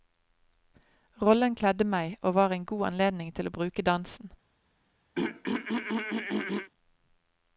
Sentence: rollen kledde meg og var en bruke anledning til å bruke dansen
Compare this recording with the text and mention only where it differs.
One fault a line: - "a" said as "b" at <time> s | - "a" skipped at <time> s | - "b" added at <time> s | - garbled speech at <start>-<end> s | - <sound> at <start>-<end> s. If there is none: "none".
- "bruke" said as "god" at 2.6 s
- throat clearing at 5.1-6.7 s